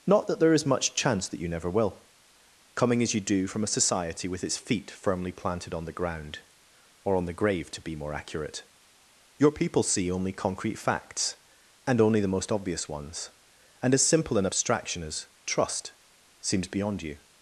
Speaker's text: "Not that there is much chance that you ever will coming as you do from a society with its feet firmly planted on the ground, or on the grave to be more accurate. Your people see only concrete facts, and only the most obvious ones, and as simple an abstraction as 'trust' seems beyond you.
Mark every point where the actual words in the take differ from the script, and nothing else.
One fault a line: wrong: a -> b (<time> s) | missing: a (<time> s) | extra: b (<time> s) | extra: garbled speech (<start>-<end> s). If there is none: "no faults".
wrong: ever -> never (1.5 s)